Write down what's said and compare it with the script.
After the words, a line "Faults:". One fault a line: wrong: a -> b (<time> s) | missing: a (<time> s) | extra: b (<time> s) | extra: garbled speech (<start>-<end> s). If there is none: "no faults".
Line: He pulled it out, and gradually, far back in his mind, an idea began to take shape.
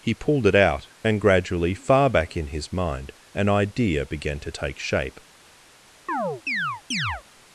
He pulled it out, and gradually, far back in his mind, an idea began to take shape.
Faults:
no faults